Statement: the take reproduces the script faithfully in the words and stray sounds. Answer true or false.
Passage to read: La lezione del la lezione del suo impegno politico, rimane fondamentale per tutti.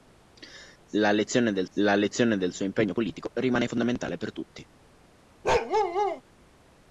false